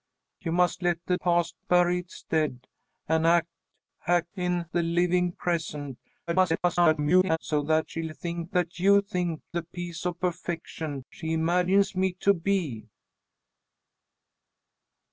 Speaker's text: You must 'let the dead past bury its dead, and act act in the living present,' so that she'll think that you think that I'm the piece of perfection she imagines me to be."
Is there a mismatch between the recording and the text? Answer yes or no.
yes